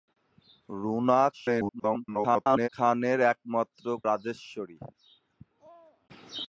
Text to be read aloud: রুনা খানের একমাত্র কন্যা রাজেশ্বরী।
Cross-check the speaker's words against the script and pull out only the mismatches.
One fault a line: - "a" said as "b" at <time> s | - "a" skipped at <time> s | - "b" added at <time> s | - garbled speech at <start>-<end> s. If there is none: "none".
- garbled speech at 1.3-2.7 s
- "কন্যা" skipped at 3.8 s